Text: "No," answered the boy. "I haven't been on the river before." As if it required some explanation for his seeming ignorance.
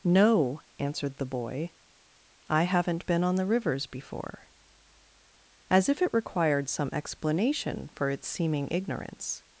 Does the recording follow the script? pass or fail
fail